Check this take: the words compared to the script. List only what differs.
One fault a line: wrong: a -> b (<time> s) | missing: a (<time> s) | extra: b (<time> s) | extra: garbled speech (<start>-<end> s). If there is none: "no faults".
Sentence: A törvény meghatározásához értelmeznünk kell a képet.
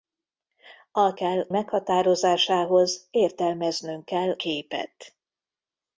wrong: törvény -> kell (1.1 s)
missing: a (4.4 s)